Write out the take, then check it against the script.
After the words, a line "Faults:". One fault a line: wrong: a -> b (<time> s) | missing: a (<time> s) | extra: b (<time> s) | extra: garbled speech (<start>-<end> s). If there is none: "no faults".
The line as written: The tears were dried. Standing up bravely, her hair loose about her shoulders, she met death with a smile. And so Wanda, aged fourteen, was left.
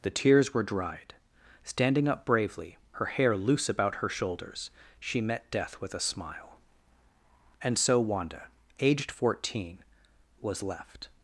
The tears were dried. Standing up bravely, her hair loose about her shoulders, she met death with a smile. And so Wanda, aged fourteen, was left.
Faults:
no faults